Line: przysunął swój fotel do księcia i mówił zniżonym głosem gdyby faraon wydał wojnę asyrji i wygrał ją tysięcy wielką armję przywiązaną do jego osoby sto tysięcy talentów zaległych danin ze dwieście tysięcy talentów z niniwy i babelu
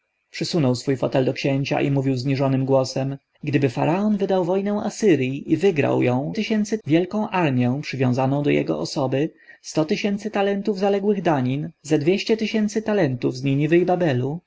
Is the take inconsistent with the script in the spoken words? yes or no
no